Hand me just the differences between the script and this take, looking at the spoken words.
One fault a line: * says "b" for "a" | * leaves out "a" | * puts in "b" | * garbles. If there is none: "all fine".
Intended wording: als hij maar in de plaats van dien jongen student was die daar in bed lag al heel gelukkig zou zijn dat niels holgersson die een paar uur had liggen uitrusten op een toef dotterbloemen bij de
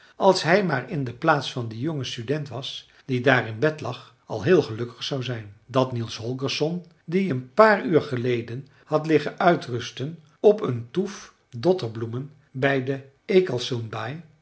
* puts in "geleden"